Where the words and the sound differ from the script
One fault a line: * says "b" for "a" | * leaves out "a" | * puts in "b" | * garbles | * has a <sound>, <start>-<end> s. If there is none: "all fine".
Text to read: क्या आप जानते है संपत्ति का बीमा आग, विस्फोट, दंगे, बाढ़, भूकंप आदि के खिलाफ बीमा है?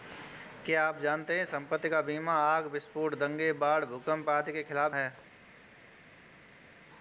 * leaves out "बीमा"